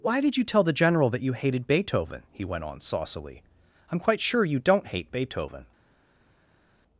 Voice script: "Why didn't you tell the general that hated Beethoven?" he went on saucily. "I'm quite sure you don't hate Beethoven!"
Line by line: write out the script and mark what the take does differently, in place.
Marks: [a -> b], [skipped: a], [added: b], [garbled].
"Why [didn't -> did] you tell the general that [added: you] hated Beethoven?" he went on saucily. "I'm quite sure you don't hate Beethoven!"